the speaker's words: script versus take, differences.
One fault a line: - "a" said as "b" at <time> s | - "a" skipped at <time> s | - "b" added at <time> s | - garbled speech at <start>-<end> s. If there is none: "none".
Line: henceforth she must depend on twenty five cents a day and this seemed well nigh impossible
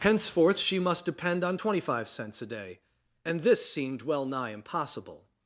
none